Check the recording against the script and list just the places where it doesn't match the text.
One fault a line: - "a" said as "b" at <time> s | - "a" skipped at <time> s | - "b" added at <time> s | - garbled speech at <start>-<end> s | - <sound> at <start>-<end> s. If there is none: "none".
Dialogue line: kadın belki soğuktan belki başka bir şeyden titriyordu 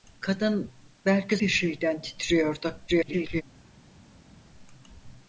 - "soğuktan belki başka" skipped at 1.4 s
- garbled speech at 2.9-3.4 s